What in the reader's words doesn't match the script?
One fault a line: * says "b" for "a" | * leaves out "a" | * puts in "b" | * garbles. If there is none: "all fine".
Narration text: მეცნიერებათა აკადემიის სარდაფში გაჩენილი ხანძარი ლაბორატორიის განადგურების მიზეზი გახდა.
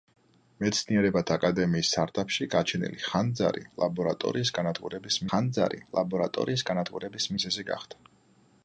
* puts in "ხანძარი ლაბორატორიის განადგურების"